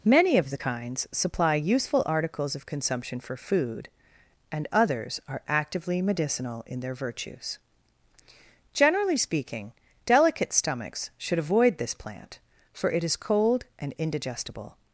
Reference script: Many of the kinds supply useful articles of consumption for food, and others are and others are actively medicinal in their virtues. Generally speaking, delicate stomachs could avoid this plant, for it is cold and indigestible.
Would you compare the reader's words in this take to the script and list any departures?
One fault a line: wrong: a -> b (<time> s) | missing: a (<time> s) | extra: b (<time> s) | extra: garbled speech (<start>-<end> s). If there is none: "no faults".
missing: and others are (5.4 s)
wrong: could -> should (11.2 s)